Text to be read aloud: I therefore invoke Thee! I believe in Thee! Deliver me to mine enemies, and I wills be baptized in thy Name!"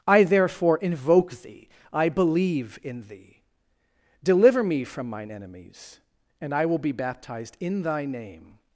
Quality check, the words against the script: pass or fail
fail